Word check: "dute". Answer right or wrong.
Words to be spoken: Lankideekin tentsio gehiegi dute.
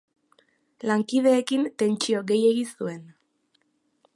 wrong